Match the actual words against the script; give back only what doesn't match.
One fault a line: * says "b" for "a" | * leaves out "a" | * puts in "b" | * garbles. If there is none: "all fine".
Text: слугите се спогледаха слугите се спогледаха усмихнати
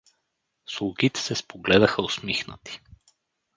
* leaves out "слугите се спогледаха"